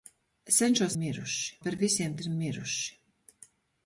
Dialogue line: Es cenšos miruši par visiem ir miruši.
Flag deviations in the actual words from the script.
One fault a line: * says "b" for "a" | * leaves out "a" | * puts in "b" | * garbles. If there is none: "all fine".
all fine